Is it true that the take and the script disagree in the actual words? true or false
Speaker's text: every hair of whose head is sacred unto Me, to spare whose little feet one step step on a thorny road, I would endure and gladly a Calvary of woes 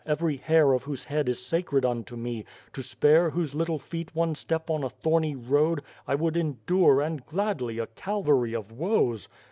true